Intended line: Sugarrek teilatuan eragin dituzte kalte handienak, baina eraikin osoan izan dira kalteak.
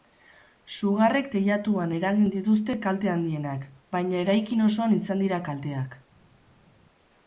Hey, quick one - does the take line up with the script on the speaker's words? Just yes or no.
yes